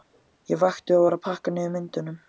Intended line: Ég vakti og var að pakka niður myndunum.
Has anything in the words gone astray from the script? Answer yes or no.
no